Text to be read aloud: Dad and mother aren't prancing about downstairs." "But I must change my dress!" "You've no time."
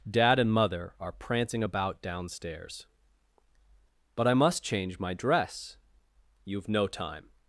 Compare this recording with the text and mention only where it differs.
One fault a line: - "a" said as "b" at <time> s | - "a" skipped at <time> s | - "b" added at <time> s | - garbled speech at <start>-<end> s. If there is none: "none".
- "aren't" said as "are" at 1.0 s